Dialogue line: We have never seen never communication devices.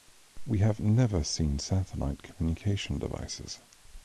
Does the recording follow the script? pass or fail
fail